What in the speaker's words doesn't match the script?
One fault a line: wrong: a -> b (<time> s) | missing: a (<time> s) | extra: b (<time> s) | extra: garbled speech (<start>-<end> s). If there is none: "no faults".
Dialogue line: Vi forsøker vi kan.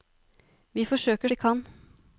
no faults